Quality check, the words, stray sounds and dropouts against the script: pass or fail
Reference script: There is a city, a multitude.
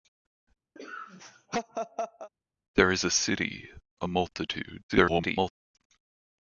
fail